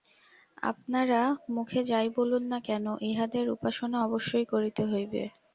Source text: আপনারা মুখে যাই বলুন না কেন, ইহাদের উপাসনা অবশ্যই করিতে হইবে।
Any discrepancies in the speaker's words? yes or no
no